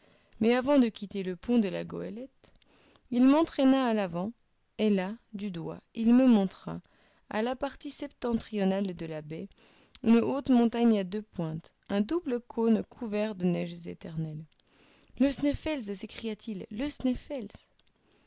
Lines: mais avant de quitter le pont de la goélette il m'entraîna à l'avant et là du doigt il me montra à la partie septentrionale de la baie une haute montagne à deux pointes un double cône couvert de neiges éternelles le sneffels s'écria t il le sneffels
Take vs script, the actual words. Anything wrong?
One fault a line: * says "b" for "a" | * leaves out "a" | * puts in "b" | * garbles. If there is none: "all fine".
all fine